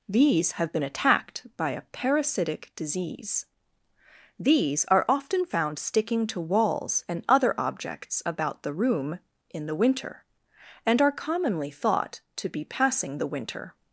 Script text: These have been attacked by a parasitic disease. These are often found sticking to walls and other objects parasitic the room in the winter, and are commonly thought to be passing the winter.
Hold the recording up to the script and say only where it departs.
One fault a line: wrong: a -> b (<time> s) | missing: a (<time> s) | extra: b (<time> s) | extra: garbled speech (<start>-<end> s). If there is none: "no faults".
wrong: parasitic -> about (8.2 s)